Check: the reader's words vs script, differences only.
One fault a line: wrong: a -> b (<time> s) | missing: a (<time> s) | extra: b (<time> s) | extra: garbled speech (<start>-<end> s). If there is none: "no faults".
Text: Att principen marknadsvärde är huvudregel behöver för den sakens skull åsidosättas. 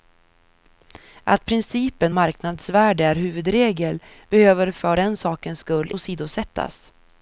no faults